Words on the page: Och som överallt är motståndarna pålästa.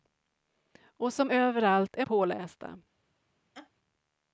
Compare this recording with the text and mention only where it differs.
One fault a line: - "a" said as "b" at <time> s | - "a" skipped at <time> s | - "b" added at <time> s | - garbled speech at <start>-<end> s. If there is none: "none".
- "motståndarna" skipped at 2.1 s